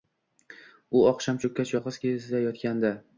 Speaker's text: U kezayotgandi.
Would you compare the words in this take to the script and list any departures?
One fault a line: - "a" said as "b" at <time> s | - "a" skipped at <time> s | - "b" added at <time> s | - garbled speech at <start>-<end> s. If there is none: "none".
- "oqshom cho‘kkach yolg‘iz" added at 1.1 s